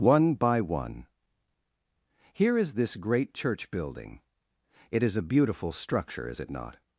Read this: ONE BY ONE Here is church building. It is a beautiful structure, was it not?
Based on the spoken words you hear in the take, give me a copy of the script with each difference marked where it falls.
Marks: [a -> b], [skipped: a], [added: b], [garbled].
ONE BY ONE Here is [added: this great] church building. It is a beautiful structure, [was -> is] it not?